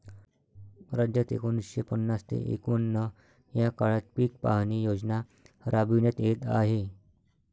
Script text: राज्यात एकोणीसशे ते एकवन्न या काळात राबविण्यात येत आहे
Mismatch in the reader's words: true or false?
true